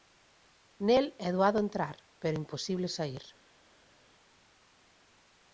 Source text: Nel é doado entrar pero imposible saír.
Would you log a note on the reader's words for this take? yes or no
no